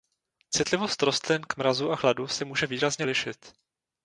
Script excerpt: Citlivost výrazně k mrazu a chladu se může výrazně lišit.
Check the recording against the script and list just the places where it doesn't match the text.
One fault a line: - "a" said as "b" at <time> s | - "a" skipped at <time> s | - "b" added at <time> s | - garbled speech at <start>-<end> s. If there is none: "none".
- "výrazně" said as "rostlin" at 1.0 s